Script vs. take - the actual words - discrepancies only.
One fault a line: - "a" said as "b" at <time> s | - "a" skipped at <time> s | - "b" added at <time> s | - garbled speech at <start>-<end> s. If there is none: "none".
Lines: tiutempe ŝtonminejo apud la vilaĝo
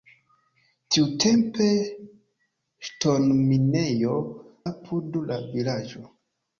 none